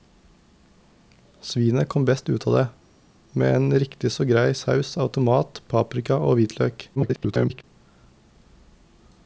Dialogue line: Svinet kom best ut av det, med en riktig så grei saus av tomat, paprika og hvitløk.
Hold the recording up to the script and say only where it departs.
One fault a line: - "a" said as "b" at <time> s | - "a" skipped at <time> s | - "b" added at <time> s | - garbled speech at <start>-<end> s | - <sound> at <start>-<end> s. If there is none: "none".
- garbled speech at 7.0-7.6 s